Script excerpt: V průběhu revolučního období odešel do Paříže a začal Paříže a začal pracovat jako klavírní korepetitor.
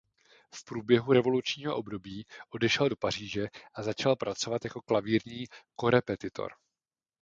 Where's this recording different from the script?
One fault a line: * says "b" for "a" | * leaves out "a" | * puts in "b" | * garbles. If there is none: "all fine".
* leaves out "Paříže a začal"